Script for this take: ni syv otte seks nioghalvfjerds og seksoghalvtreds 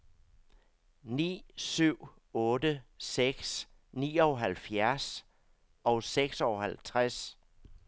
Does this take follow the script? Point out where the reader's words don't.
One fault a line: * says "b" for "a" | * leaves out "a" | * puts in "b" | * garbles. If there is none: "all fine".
all fine